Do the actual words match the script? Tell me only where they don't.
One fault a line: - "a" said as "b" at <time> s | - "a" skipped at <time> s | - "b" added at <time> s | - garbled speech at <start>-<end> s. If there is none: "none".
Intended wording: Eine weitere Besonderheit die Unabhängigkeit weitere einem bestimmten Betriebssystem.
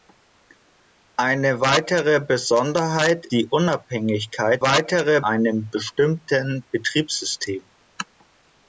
none